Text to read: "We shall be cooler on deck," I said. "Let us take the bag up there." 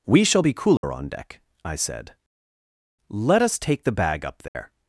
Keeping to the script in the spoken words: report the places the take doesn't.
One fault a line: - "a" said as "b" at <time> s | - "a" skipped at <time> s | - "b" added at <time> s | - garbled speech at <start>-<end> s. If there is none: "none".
none